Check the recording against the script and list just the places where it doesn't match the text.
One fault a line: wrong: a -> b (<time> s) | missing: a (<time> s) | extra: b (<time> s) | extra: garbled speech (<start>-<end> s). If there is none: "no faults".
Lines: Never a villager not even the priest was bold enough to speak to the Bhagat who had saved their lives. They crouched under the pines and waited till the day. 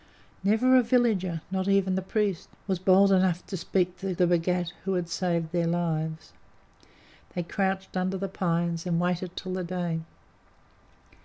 no faults